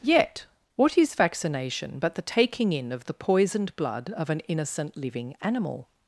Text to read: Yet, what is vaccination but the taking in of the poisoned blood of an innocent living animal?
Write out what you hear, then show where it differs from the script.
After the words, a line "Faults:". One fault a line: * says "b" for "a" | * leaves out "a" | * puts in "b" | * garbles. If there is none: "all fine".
Yet, what is vaccination but the taking in of the poisoned blood of an innocent living animal?
Faults:
all fine